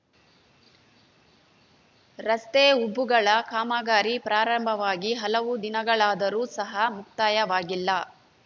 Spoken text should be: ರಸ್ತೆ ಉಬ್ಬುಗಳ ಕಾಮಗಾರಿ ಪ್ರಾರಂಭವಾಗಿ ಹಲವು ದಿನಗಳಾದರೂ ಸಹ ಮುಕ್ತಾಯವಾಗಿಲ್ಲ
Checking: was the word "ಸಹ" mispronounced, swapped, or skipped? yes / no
no